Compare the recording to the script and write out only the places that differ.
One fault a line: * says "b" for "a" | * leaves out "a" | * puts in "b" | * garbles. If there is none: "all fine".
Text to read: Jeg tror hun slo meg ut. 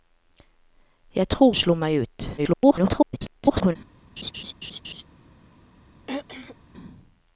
* leaves out "hun"
* garbles